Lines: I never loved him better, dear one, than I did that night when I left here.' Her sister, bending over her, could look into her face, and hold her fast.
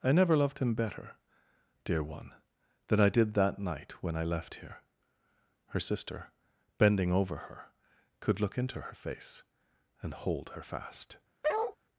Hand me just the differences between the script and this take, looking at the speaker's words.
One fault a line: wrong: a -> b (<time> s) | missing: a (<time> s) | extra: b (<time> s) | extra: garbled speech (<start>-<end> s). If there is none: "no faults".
no faults